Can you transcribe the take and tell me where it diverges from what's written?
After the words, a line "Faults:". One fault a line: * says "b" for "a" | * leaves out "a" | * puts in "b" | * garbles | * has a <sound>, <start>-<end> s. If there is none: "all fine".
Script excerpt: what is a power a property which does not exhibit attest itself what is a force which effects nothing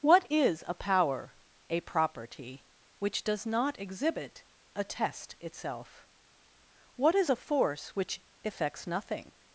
what is a power a property which does not exhibit attest itself what is a force which effects nothing
Faults:
all fine